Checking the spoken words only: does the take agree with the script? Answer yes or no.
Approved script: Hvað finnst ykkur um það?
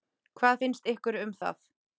yes